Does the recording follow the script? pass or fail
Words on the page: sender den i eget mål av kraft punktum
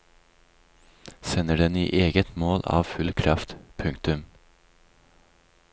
fail